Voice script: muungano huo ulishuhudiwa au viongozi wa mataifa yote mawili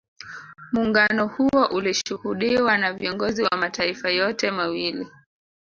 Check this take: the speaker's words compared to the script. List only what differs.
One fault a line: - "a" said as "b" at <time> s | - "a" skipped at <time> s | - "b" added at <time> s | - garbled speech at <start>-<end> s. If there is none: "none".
- "au" said as "na" at 2.8 s